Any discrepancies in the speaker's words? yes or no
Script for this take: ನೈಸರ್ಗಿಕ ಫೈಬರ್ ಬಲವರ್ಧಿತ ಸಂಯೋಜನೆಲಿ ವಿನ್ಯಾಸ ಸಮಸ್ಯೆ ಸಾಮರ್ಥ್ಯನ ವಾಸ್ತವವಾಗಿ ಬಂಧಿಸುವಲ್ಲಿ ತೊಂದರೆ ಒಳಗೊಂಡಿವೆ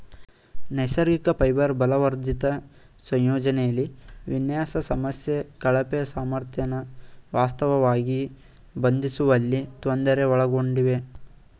yes